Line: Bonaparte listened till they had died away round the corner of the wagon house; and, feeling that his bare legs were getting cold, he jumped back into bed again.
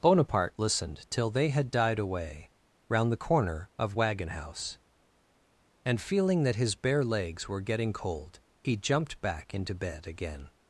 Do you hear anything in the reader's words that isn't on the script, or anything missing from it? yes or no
yes